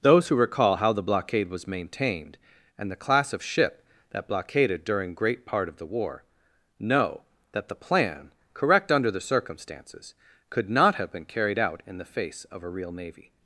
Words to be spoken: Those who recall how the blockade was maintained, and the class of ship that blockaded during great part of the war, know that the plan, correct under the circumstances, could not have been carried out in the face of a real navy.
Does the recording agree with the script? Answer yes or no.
yes